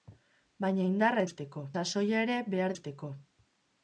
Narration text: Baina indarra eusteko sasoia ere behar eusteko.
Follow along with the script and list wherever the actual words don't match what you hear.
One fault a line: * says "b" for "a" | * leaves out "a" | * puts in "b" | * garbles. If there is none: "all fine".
all fine